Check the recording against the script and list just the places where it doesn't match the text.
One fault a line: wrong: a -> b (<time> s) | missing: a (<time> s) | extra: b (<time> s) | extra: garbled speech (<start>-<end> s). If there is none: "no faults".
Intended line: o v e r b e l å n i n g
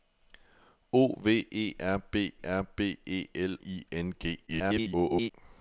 extra: r b (2.4 s)
missing: å n (3.6 s)
extra: garbled speech (4.5-5.3 s)